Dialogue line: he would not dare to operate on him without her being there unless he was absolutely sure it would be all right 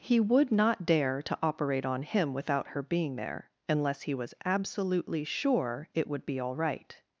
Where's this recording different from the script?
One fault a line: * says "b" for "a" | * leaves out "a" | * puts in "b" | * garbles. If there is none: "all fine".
all fine